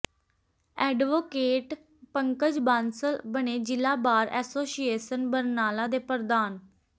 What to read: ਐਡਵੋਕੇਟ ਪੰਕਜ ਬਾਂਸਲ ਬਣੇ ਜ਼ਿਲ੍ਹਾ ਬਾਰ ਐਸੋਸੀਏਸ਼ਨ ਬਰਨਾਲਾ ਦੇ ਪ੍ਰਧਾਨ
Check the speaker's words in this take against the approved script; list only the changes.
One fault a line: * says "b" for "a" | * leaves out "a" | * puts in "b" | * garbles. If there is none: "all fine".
all fine